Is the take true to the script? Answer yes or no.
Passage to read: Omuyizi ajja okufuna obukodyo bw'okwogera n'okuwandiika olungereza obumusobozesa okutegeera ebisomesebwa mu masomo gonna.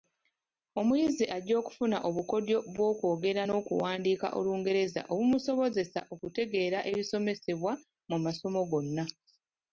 yes